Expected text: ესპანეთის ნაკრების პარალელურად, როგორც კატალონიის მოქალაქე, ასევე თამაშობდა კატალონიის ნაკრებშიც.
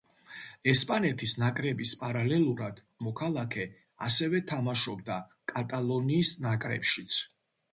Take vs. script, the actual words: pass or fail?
fail